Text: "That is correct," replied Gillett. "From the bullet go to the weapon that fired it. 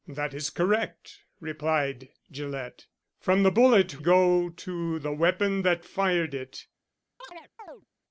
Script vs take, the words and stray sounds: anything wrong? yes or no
yes